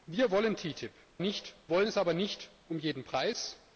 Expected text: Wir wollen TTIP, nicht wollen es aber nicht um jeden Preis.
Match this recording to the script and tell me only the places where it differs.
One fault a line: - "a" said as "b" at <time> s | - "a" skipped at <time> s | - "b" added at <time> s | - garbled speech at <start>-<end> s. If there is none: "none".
none